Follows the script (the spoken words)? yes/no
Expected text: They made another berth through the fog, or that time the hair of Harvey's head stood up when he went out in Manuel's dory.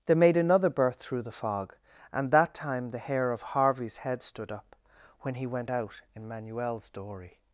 no